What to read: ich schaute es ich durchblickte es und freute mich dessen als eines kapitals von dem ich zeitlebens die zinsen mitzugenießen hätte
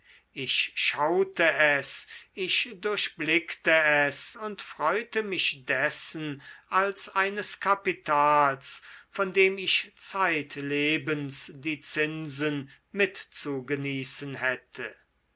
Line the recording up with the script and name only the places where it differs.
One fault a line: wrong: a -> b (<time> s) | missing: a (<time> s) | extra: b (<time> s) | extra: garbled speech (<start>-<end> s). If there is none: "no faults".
no faults